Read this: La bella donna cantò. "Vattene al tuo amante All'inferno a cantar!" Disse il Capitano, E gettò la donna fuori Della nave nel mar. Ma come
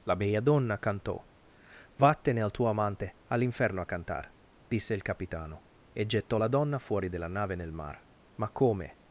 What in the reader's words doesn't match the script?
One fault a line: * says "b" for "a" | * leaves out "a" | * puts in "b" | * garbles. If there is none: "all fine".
all fine